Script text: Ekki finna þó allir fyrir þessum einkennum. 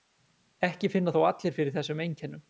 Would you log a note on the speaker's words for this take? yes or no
no